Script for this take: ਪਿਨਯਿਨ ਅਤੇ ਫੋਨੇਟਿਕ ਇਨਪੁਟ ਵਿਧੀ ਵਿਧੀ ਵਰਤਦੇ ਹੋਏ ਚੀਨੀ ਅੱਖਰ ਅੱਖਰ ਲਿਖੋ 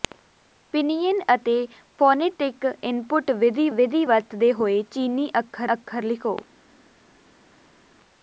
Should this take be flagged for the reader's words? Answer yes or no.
no